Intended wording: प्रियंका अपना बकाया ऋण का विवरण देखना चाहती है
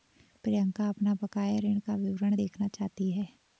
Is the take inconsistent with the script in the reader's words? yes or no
no